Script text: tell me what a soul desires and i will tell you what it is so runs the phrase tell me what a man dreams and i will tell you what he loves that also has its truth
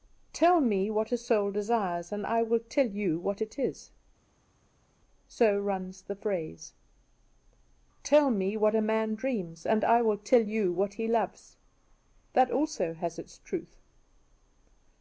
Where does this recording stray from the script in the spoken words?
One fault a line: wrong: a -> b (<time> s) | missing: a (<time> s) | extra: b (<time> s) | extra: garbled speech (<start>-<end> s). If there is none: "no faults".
no faults